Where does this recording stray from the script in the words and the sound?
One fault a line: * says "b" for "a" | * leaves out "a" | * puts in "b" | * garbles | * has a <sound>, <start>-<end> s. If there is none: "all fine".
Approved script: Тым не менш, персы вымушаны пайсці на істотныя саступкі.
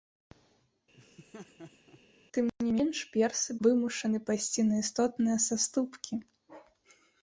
* has a laugh, 1.0-2.0 s